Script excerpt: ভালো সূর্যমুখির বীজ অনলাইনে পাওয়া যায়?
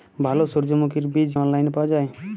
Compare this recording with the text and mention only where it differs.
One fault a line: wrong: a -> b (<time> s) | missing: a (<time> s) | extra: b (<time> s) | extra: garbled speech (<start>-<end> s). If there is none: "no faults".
no faults